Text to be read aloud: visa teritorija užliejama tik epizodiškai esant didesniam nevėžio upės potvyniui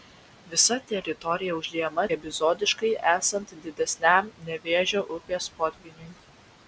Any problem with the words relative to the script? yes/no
yes